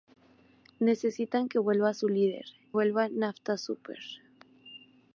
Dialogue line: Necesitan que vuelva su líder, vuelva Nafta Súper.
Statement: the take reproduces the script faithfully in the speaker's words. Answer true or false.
true